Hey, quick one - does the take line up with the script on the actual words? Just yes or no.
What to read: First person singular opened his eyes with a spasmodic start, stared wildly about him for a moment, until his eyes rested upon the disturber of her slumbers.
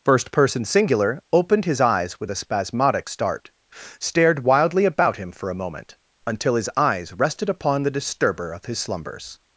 no